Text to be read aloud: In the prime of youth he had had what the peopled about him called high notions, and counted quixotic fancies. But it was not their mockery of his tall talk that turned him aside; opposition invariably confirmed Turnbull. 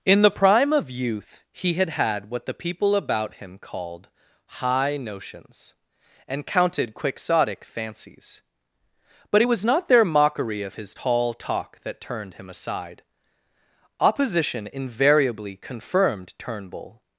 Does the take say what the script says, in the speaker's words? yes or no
no